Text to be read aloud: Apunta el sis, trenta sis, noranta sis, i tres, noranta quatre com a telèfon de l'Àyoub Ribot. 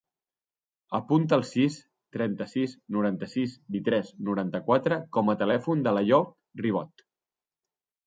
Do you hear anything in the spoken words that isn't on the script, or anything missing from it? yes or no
no